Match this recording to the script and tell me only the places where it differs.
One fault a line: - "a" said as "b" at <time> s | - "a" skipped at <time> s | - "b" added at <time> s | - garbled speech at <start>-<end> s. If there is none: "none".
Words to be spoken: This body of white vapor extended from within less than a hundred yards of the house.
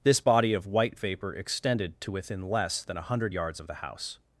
- "from" said as "to" at 2.0 s